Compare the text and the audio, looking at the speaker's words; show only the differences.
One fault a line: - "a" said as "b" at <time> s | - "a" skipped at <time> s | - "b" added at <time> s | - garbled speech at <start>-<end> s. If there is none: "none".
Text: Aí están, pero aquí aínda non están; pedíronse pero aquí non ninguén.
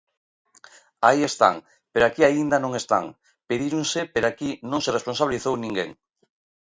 - "se responsabilizou" added at 4.8 s